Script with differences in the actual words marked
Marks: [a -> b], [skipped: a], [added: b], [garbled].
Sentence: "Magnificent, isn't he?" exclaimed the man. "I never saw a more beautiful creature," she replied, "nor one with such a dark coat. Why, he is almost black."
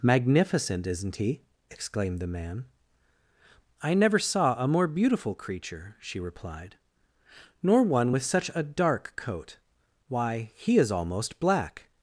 "Magnificent, isn't he?" exclaimed the man. "I never saw a more beautiful creature," she replied, "nor one with such a dark coat. Why, he is almost black."